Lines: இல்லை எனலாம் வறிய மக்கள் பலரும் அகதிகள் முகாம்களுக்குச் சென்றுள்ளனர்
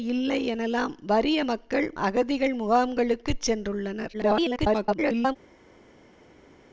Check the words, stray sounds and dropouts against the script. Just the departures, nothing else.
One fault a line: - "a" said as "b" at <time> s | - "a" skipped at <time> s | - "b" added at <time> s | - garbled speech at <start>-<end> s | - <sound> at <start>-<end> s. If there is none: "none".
- "பலரும்" skipped at 1.9 s
- garbled speech at 4.1-5.4 s